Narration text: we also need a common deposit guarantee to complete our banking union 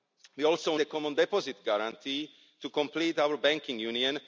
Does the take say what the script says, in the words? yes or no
no